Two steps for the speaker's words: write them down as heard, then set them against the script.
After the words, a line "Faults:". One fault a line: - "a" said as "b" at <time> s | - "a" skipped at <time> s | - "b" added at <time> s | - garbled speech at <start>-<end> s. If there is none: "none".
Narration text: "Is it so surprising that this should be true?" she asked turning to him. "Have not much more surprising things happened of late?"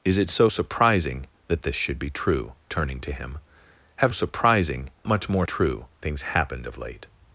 "Is it so surprising that this should be true?" turning to him. "Have surprising much more true things happened of late?"
Faults:
- "she asked" skipped at 2.5 s
- "not" said as "surprising" at 4.1 s
- "surprising" said as "true" at 5.4 s